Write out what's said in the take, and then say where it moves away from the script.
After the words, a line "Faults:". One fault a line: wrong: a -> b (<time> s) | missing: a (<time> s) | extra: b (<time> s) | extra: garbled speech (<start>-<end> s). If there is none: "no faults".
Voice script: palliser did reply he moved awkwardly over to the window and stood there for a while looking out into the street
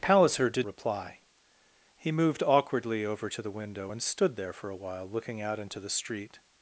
palliser did reply he moved awkwardly over to the window and stood there for a while looking out into the street
Faults:
no faults